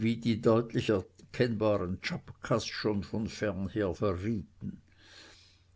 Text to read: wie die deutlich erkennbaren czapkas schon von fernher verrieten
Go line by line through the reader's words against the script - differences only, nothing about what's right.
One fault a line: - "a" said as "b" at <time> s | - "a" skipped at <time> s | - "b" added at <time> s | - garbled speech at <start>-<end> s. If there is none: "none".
none